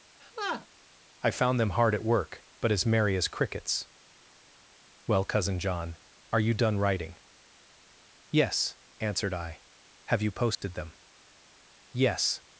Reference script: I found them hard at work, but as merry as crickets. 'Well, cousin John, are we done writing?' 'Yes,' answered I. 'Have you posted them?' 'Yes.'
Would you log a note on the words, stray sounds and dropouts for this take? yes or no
yes